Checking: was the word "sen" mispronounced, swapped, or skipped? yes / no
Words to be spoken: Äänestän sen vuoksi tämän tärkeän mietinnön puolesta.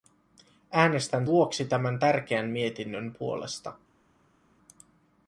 yes